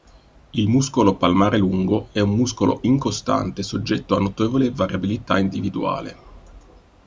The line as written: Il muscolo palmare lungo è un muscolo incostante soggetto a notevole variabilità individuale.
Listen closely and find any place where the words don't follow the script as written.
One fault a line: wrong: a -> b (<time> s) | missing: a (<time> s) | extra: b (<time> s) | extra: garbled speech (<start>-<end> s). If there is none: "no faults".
no faults